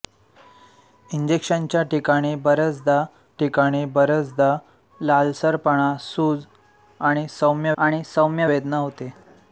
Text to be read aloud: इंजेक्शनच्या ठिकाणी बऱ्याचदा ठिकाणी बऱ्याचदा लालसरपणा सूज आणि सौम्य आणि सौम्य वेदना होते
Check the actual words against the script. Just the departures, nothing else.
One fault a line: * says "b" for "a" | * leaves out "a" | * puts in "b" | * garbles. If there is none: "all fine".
all fine